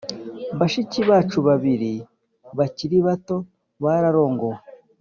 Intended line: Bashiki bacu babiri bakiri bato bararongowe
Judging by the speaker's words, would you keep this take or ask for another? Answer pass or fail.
pass